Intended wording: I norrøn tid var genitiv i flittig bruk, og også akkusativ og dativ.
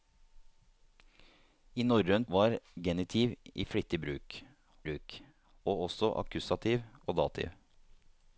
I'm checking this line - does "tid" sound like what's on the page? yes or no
no